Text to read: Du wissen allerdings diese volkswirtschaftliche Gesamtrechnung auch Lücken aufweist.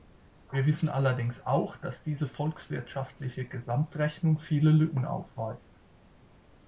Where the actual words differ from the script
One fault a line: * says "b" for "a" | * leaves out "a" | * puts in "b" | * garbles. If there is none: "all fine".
* says "Wir" for "Du"
* puts in "auch dass"
* says "viele" for "auch"